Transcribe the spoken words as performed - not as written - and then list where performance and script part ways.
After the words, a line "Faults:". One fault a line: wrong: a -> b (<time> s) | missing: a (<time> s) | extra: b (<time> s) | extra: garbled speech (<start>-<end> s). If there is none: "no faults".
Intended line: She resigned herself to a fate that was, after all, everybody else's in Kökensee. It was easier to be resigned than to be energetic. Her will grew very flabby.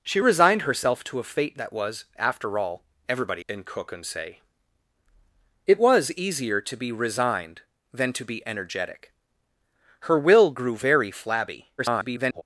She resigned herself to a fate that was, after all, everybody in Kökensee. It was easier to be resigned than to be energetic. Her will grew very flabby. [garbled]
Faults:
missing: else's (3.5 s)
extra: garbled speech (11.8-12.4 s)